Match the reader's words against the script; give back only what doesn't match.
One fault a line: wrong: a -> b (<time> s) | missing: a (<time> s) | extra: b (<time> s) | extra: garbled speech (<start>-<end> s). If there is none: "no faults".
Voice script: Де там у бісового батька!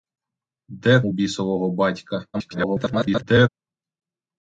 missing: там (1.0 s)
extra: garbled speech (2.3-3.5 s)